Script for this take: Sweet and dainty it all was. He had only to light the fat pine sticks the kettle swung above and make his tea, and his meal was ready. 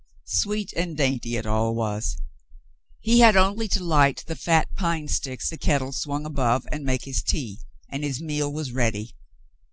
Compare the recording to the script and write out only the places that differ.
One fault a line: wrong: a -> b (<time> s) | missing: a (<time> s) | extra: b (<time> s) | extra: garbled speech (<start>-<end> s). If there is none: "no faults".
no faults